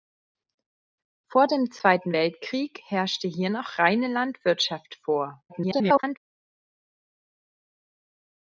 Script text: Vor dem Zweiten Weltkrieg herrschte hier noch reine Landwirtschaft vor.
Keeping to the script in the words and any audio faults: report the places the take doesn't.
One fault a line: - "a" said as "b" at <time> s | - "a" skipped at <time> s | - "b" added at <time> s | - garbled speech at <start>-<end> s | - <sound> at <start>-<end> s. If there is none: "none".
- garbled speech at 5.5-6.2 s